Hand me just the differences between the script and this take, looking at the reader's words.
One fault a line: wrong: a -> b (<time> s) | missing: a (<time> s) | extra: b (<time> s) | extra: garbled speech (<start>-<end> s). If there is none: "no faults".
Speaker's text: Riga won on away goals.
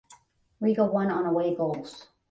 no faults